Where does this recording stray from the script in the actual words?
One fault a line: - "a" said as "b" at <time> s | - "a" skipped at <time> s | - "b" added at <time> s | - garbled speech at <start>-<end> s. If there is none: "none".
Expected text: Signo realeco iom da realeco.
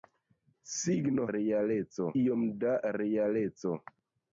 none